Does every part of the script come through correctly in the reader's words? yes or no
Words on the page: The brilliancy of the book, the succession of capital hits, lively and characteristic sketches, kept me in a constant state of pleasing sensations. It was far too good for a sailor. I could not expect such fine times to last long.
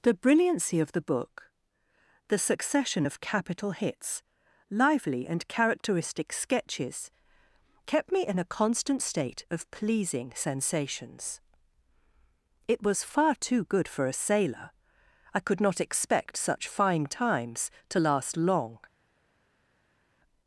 yes